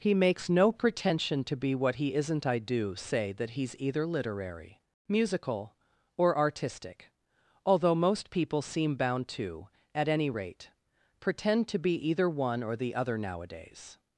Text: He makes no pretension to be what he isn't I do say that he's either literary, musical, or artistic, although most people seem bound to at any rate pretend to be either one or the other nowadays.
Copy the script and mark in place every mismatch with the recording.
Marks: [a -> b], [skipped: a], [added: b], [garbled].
He makes no pretension to be what he isn't I do say that he's either literary, musical, or artistic, although most people seem bound to at any rate pretend to be either one or the other nowadays.